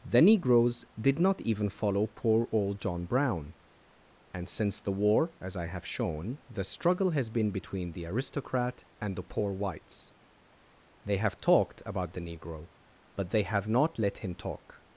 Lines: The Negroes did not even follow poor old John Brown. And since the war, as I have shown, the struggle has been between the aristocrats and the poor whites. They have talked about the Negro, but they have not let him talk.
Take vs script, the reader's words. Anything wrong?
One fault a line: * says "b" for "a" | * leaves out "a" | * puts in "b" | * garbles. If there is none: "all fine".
* says "aristocrat" for "aristocrats"